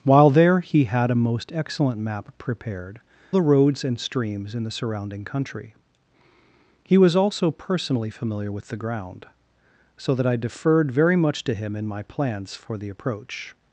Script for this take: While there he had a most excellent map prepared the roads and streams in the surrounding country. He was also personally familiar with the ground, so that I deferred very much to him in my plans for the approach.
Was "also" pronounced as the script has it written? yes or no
yes